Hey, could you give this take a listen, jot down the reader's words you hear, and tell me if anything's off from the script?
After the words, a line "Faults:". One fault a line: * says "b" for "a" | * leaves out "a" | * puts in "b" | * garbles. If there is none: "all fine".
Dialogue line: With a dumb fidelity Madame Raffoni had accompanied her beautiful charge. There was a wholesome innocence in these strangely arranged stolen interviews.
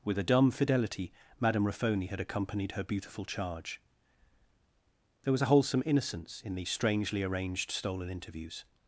With a dumb fidelity Madame Raffoni had accompanied her beautiful charge. There was a wholesome innocence in these strangely arranged stolen interviews.
Faults:
all fine